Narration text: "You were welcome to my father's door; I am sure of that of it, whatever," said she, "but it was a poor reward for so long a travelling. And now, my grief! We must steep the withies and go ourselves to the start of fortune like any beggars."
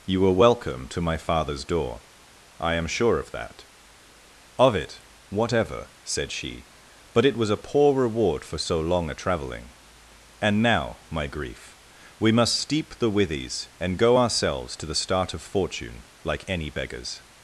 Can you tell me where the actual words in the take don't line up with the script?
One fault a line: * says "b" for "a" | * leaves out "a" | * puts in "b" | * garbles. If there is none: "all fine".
all fine